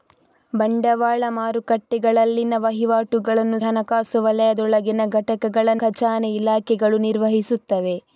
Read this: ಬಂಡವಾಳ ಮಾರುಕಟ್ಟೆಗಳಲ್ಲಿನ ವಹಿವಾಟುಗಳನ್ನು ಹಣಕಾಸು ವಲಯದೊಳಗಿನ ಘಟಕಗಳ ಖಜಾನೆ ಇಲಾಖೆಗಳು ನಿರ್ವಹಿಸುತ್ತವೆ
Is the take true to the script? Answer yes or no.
yes